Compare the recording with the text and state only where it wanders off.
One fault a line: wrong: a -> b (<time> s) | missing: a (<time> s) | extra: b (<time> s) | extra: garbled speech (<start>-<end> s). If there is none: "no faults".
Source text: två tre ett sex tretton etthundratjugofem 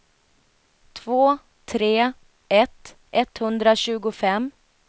missing: sex tretton (3.0 s)